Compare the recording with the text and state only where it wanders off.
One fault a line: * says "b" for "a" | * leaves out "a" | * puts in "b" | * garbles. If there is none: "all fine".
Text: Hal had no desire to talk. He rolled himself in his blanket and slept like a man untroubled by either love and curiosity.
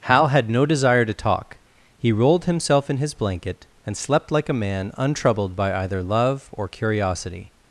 * says "or" for "and"